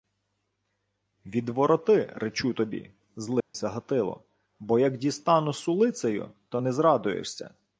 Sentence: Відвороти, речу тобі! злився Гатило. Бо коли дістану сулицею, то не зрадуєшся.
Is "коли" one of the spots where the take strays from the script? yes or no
yes